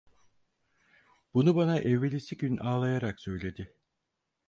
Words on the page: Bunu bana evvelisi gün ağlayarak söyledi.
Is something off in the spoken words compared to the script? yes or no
no